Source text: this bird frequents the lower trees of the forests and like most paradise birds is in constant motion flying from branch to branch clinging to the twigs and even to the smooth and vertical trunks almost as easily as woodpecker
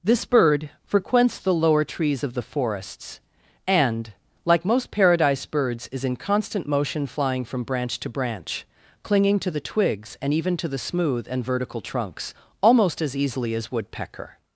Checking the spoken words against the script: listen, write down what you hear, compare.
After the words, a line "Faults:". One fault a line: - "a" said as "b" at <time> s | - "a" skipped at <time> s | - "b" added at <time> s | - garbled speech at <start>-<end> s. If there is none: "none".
this bird frequents the lower trees of the forests and like most paradise birds is in constant motion flying from branch to branch clinging to the twigs and even to the smooth and vertical trunks almost as easily as woodpecker
Faults:
none